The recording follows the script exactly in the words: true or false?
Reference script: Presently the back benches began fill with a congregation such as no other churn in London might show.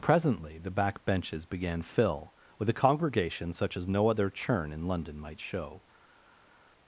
true